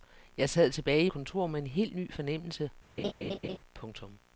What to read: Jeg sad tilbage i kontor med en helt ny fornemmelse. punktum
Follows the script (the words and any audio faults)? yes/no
no